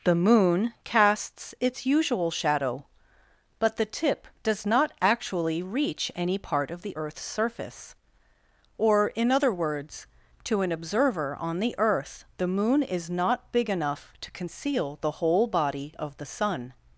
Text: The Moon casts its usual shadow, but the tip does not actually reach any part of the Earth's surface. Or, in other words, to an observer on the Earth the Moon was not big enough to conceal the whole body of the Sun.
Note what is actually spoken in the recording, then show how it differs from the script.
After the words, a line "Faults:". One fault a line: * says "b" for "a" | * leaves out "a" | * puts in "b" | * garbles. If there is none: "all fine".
The Moon casts its usual shadow, but the tip does not actually reach any part of the Earth's surface. Or, in other words, to an observer on the Earth the Moon is not big enough to conceal the whole body of the Sun.
Faults:
* says "is" for "was"